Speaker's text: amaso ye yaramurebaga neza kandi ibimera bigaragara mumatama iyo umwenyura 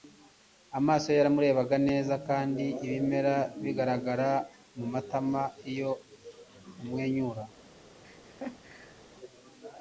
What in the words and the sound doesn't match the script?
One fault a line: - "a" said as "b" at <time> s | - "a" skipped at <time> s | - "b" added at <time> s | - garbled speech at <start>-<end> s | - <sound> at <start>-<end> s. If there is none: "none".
- laugh at 8.0-9.0 s